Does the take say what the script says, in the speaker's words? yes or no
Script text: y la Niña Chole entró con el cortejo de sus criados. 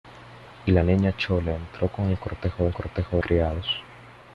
no